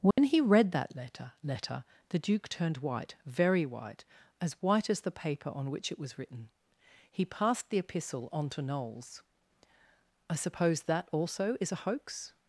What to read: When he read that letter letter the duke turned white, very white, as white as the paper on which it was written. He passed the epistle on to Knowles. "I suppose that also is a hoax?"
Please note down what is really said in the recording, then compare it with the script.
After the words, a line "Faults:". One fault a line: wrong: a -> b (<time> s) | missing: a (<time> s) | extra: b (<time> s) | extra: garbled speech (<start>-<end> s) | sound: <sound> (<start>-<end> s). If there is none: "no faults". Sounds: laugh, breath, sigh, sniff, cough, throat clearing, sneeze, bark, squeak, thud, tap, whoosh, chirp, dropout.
When he read that letter letter the duke turned white, very white, as white as the paper on which it was written. He passed the epistle on to Knowles. "I suppose that also is a hoax?"
Faults:
sound: dropout (0.1-0.2 s)